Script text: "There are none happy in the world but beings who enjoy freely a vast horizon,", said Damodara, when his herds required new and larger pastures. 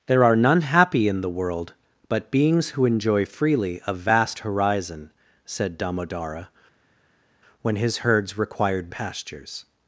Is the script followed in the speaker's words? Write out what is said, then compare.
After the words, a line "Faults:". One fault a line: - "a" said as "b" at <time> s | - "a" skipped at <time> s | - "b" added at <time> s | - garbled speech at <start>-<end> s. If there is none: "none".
"There are none happy in the world but beings who enjoy freely a vast horizon,", said Damodara, when his herds required pastures.
Faults:
- "new and larger" skipped at 8.9 s